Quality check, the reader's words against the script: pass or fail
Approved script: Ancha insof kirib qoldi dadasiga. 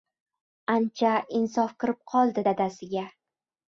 pass